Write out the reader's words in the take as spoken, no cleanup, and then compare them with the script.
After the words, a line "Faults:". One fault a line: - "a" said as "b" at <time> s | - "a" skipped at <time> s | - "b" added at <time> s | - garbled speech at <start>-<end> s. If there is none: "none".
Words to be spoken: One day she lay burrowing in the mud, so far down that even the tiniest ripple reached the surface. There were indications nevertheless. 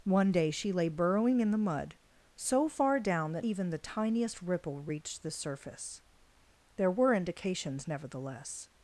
One day she lay burrowing in the mud, so far down that even the tiniest ripple reached the surface. There were indications nevertheless.
Faults:
none